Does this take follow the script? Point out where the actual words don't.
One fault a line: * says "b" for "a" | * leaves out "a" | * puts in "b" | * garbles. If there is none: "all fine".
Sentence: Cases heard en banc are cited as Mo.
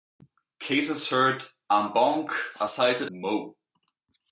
* leaves out "as"